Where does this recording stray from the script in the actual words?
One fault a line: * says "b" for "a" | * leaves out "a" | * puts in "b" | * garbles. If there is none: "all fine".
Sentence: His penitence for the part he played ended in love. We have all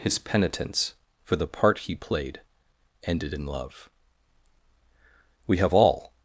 all fine